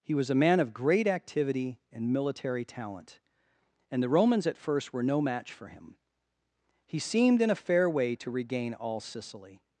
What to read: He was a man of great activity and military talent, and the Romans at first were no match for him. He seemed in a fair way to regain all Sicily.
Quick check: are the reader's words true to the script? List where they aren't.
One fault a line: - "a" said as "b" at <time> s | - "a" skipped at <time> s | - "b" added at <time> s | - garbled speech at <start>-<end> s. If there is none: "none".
none